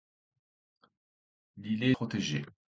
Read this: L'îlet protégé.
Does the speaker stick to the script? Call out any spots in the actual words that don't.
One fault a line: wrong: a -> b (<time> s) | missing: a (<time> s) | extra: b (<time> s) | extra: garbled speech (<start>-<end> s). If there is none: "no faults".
no faults